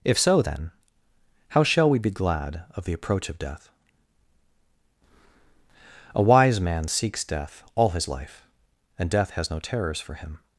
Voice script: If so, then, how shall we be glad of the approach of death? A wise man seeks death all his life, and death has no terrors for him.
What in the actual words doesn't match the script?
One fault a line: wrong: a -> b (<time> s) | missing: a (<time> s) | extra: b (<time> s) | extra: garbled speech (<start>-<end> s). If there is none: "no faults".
no faults